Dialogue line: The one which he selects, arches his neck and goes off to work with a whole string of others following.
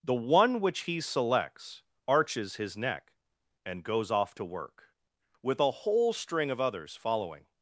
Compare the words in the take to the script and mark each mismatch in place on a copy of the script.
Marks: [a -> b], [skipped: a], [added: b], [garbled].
The one which he selects, arches his neck and goes off to work with a whole string of others following.